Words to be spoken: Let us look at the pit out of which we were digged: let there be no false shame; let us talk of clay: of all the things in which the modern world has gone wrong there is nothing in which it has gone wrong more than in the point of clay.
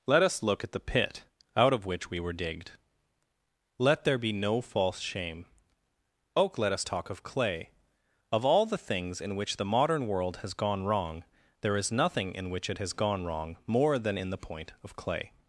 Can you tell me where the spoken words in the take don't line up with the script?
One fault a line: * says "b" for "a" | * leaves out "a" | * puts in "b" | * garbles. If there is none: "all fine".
* puts in "oak"